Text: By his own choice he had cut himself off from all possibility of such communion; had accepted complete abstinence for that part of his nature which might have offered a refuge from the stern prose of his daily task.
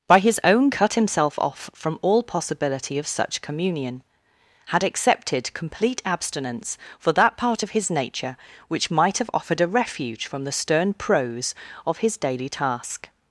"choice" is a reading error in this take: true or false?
true